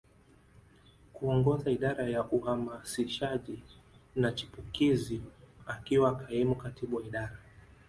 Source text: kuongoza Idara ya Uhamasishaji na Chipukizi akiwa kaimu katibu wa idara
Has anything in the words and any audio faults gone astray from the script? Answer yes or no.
no